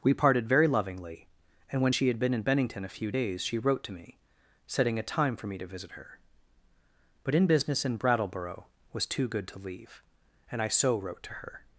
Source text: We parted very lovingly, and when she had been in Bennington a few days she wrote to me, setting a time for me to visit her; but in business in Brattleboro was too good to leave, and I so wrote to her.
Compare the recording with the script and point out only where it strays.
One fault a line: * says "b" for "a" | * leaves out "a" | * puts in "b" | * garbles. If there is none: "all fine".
all fine